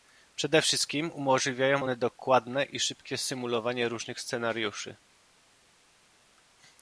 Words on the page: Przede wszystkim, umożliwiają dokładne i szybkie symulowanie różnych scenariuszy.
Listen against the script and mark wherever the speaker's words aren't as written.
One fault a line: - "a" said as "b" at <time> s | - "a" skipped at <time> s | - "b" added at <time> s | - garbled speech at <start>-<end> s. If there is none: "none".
- "one" added at 1.8 s